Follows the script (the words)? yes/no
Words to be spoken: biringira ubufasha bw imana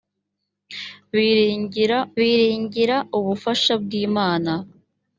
no